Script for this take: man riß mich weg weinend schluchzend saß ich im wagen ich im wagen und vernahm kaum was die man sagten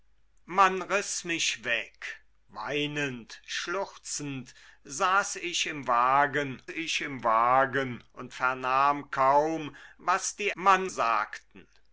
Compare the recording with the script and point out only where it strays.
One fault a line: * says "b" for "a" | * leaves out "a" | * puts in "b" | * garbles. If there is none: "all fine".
all fine